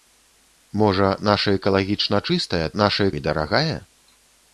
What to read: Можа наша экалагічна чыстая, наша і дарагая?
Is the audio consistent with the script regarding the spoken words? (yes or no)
yes